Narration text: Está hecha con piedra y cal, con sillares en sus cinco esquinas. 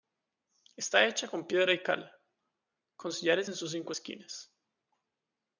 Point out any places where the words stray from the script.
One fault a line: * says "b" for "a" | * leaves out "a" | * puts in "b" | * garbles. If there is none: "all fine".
all fine